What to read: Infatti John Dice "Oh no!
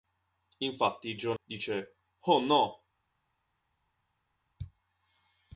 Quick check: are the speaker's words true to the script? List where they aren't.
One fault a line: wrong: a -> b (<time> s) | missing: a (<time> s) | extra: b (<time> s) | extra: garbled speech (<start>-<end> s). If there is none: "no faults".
no faults